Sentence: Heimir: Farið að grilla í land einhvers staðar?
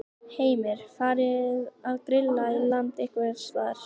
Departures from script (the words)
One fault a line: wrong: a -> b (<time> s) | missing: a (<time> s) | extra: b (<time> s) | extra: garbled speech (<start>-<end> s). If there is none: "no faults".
no faults